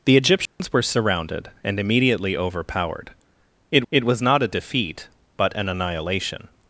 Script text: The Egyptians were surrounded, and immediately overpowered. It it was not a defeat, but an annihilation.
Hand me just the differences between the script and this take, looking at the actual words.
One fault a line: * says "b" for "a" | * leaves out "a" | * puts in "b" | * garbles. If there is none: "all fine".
all fine